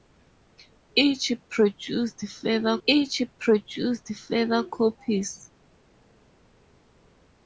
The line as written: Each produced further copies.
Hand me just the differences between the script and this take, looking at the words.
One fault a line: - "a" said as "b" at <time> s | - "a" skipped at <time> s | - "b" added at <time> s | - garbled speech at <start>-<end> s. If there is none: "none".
- "each produced further" added at 2.9 s